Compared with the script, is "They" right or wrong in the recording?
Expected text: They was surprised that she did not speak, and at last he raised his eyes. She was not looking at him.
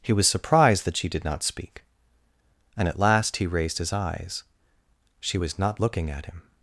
wrong